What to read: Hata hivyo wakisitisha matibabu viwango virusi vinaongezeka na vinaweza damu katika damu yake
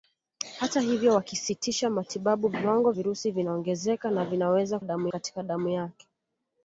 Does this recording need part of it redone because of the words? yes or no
no